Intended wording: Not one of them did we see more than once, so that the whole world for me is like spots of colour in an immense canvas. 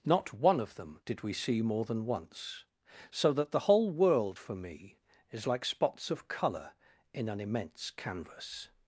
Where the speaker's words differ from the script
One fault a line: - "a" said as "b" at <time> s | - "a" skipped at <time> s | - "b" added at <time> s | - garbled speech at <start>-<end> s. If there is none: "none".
none